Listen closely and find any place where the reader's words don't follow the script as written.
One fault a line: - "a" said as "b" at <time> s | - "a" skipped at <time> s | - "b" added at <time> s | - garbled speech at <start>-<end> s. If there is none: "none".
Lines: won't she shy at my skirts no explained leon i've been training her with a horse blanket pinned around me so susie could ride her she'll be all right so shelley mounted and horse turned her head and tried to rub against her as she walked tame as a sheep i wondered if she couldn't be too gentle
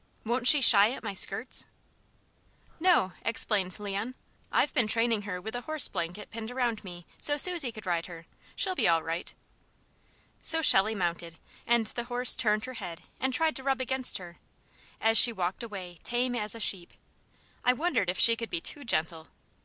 - "the" added at 11.9 s
- "away" added at 15.6 s
- "couldn't" said as "could" at 18.4 s